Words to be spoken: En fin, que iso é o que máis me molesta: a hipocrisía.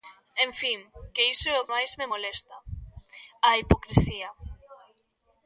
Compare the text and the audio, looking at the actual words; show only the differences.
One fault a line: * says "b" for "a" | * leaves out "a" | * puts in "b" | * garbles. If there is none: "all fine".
* leaves out "que"